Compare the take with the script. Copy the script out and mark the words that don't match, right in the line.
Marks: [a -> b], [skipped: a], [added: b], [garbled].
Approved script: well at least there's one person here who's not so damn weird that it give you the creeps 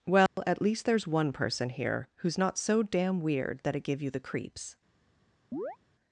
well at least there's one person here who's not so damn weird that it give you the creeps